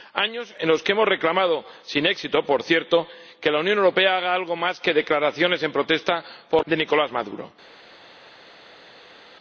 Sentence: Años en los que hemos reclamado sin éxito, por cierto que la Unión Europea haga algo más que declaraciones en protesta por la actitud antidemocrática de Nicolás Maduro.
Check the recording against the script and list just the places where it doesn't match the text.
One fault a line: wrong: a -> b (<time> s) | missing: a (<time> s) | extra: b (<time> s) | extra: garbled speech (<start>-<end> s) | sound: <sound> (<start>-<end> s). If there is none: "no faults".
missing: la actitud antidemocrática (6.7 s)